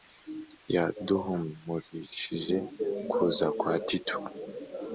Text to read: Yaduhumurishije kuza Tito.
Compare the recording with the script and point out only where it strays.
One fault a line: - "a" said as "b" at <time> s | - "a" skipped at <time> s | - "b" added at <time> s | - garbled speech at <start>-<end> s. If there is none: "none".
- "kwa" added at 3.6 s